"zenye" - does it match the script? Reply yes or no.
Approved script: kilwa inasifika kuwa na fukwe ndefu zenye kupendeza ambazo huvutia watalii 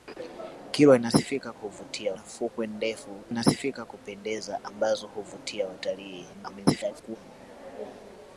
no